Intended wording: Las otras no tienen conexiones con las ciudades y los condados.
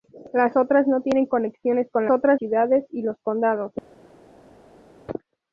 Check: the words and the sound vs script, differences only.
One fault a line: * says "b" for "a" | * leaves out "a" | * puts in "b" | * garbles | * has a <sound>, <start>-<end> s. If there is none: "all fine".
* says "otras" for "las"